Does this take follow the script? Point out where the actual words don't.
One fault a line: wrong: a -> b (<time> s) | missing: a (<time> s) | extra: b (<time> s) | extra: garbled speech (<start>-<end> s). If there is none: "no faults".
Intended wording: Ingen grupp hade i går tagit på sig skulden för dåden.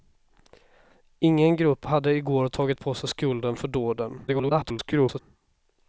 extra: garbled speech (4.3-5.2 s)